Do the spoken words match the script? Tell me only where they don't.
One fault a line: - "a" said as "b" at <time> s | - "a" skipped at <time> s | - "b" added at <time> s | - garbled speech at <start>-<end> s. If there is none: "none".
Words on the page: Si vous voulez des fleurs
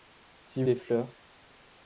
- "vous voulez" skipped at 0.6 s